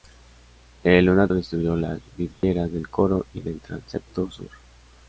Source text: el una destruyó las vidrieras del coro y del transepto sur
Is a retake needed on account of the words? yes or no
no